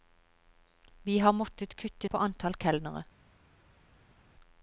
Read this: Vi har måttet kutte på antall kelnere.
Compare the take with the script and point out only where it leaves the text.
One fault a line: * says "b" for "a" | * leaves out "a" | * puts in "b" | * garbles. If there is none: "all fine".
all fine